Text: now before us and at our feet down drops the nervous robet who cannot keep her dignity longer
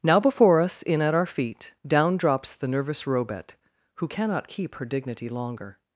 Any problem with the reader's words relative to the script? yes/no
yes